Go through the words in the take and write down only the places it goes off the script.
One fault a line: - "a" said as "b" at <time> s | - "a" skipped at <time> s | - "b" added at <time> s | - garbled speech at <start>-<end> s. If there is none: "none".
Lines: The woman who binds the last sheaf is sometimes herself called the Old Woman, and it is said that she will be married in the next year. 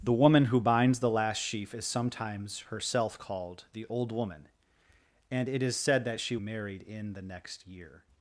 - "will be" skipped at 6.4 s